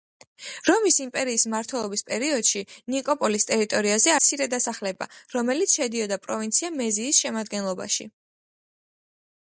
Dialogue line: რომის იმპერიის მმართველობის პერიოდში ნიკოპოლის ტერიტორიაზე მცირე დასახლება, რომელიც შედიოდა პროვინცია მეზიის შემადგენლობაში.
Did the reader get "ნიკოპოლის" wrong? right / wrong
right